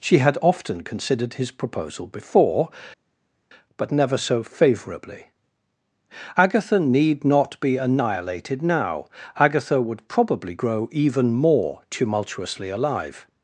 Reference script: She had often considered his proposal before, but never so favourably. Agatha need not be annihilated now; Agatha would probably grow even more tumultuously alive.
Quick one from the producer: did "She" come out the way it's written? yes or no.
yes